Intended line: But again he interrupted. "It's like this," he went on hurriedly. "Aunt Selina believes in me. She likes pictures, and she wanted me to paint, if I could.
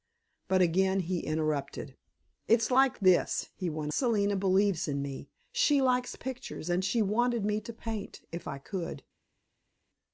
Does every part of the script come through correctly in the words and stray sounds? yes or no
no